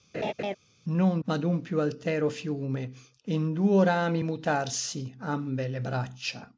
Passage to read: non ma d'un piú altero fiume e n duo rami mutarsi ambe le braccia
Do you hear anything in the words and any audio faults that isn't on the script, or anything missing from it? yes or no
yes